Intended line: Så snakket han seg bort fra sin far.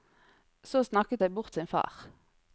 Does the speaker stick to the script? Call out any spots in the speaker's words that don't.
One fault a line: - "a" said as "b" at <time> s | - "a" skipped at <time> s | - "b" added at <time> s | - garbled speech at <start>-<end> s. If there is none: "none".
- "han" skipped at 1.2 s
- "fra" skipped at 1.6 s